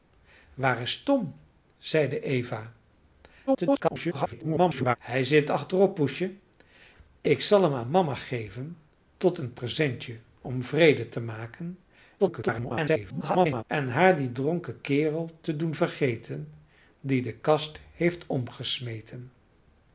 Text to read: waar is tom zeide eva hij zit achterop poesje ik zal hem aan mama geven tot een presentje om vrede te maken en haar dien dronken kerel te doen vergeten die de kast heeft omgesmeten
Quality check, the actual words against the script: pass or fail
fail